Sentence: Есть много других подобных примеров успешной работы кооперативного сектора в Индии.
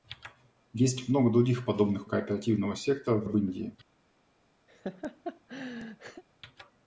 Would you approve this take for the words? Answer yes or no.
no